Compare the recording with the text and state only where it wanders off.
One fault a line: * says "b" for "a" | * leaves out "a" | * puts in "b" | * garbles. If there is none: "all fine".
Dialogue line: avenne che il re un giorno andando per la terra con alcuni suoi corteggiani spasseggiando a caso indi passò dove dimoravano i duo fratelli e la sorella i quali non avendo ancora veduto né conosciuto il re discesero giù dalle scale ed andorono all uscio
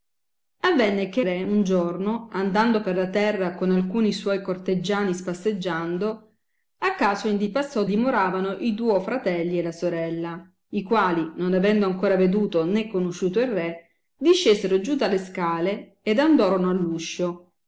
* leaves out "il"
* leaves out "dove"